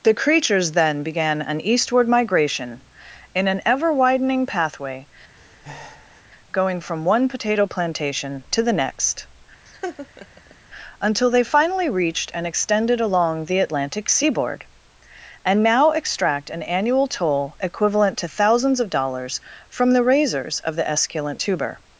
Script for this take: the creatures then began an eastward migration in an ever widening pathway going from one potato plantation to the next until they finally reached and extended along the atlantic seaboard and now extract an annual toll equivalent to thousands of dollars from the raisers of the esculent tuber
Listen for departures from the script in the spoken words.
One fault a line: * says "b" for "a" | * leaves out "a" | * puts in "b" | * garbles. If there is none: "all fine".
all fine